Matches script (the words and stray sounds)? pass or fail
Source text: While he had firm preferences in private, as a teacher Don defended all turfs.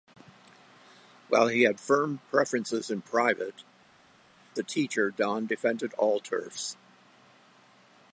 fail